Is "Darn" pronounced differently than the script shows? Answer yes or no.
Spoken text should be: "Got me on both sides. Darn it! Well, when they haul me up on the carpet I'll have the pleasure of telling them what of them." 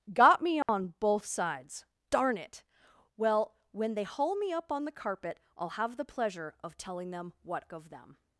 no